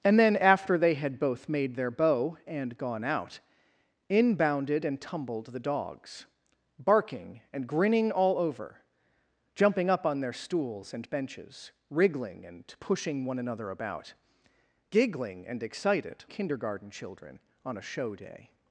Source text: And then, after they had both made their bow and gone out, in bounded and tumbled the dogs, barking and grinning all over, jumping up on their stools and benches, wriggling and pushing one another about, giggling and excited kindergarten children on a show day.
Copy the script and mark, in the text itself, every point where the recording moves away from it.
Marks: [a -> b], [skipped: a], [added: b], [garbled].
And then, after they had both made their bow and gone out, in bounded and tumbled the dogs, barking and grinning all over, jumping up on their stools and benches, wriggling and pushing one another about, giggling and excited kindergarten children on a show day.